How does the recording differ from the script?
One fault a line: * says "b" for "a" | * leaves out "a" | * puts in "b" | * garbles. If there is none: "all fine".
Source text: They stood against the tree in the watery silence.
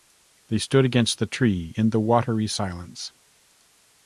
all fine